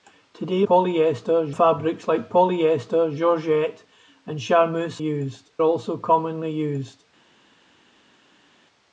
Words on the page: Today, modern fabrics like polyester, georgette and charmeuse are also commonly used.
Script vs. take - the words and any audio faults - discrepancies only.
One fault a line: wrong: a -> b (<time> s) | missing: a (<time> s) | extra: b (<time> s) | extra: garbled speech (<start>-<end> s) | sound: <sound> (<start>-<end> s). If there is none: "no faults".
wrong: modern -> polyester (0.6 s)
wrong: are -> used (5.0 s)